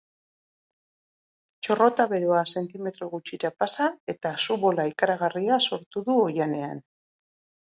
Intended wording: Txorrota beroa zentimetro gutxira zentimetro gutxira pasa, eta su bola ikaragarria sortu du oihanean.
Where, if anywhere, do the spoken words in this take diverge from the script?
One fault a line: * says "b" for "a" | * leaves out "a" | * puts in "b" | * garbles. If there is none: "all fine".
* leaves out "zentimetro gutxira"